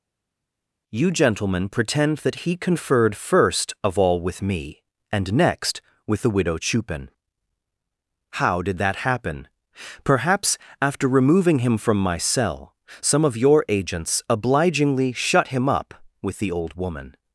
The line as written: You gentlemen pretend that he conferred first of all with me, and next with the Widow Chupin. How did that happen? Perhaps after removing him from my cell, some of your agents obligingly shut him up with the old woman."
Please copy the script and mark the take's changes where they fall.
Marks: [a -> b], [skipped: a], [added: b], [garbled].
You gentlemen pretend that he conferred first of all with me, and next with the Widow Chupin. How did that happen? Perhaps after removing him from my cell, some of your agents obligingly shut him up with the old woman."